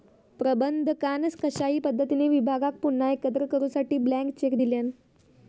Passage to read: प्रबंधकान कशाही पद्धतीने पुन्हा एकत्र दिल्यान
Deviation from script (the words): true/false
true